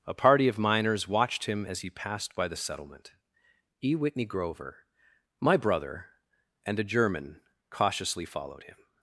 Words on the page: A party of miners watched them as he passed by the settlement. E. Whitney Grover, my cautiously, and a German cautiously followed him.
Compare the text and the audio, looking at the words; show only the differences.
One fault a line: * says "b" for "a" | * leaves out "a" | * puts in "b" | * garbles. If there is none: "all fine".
* says "him" for "them"
* says "brother" for "cautiously"